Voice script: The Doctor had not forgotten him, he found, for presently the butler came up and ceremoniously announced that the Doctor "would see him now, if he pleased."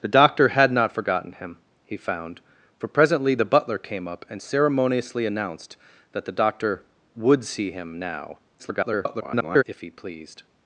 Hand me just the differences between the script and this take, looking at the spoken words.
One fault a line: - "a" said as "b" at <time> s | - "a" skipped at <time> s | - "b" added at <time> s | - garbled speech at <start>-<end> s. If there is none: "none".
- garbled speech at 8.6-9.6 s